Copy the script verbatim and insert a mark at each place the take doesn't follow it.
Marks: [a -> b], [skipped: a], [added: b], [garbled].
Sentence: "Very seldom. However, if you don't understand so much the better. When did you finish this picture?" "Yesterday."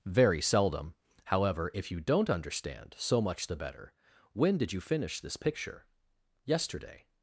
"Very seldom. However, if you don't understand so much the better. When did you finish this picture?" "Yesterday."